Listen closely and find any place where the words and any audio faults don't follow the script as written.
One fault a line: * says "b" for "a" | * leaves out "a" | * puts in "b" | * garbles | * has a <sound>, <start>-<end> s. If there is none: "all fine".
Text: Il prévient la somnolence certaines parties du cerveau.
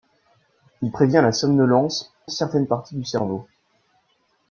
all fine